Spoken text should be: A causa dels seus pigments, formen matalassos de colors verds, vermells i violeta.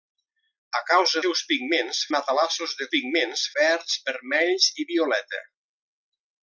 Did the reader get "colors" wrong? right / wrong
wrong